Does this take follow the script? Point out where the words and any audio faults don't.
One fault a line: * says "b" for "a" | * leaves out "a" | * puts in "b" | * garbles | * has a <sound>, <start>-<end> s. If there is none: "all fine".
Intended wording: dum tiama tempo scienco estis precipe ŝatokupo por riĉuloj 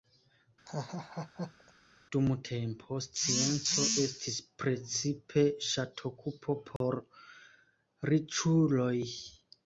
* has a laugh, 0.7-1.7 s
* leaves out "tiama"
* has a dropout, 6.8-6.8 s